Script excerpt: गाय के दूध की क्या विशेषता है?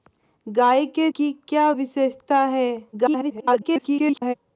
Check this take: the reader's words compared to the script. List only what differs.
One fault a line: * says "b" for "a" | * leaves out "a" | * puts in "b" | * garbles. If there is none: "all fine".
* leaves out "दूध"
* garbles